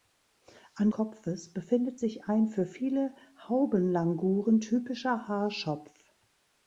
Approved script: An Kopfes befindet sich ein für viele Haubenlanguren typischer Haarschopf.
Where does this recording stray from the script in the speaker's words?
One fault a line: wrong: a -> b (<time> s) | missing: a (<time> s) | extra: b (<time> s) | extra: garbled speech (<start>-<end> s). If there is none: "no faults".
no faults